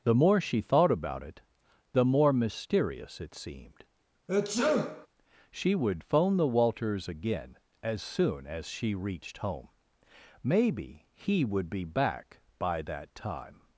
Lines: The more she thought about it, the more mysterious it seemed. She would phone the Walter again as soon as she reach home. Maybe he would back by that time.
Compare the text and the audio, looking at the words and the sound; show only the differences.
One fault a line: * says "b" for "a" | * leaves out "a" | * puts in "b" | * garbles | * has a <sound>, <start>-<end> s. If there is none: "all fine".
* has a sneeze, 4.3-5.1 s
* says "Walters" for "Walter"
* says "reached" for "reach"
* puts in "be"